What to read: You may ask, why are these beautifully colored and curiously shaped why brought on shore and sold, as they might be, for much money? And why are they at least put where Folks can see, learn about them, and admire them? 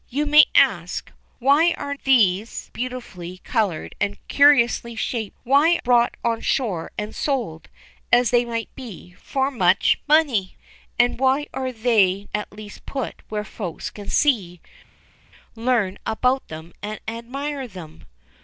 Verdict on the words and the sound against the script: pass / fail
pass